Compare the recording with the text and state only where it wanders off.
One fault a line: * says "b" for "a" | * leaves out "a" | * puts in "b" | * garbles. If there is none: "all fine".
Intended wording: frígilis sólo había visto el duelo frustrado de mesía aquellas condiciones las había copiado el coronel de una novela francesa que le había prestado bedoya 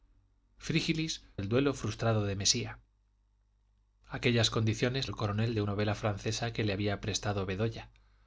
* leaves out "sólo había visto"
* leaves out "las había copiado"
* leaves out "una"